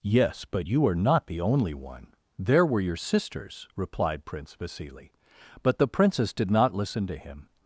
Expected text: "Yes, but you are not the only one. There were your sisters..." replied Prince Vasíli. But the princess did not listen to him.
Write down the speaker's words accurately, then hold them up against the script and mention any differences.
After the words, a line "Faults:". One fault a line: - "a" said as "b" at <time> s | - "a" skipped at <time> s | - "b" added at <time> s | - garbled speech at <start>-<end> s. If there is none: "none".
"Yes, but you are not the only one. There were your sisters..." replied Prince Vasíli. But the princess did not listen to him.
Faults:
none